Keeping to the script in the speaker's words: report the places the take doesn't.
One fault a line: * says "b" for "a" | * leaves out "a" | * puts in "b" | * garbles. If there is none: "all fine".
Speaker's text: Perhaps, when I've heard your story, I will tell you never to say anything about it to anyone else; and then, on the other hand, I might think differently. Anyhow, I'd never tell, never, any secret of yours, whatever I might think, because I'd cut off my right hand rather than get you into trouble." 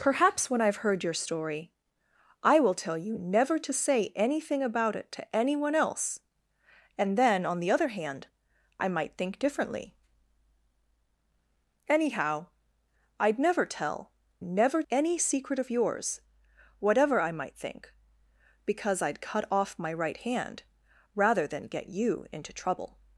all fine